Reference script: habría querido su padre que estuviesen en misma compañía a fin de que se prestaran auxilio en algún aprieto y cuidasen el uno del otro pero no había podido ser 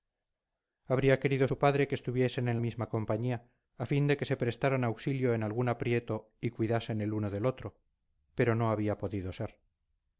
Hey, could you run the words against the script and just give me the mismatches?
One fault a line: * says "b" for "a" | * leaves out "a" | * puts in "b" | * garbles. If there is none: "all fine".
all fine